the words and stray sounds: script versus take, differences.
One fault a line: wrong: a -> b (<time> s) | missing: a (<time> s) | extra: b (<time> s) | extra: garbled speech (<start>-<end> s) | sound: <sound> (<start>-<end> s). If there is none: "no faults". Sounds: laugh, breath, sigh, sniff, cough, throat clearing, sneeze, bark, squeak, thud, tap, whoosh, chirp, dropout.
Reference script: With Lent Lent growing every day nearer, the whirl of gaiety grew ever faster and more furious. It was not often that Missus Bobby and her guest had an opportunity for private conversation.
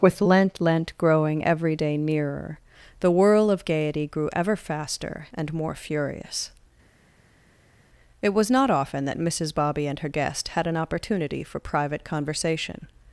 no faults